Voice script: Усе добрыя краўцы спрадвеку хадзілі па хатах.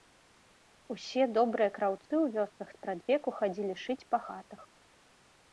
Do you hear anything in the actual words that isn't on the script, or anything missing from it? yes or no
yes